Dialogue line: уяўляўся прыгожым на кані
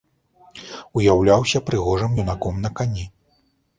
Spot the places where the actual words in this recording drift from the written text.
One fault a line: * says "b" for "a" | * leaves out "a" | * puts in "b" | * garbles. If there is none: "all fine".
* puts in "юнаком"